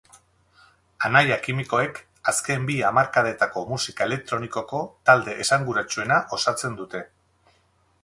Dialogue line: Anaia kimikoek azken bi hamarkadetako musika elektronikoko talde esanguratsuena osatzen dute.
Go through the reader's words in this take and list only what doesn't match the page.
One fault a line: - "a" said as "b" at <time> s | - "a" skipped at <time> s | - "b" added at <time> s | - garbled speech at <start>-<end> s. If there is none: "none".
none